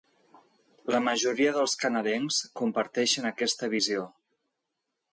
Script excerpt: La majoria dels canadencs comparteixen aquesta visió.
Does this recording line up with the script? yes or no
yes